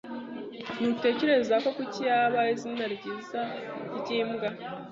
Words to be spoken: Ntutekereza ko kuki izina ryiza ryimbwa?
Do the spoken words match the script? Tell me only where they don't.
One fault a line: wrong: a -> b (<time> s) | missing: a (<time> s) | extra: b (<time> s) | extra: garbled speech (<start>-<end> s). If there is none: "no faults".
extra: yaba (2.1 s)